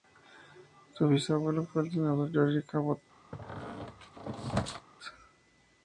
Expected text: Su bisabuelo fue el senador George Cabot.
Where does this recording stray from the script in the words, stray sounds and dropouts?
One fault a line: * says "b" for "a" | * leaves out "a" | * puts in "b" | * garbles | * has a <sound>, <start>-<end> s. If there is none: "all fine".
* has a squeak, 3.3-4.9 s